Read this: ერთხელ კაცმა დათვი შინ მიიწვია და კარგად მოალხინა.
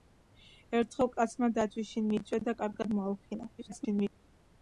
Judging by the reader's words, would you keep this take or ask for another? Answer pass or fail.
fail